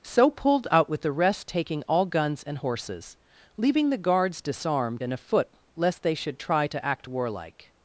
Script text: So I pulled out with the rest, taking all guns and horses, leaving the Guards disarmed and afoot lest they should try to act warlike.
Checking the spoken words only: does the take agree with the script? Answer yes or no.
no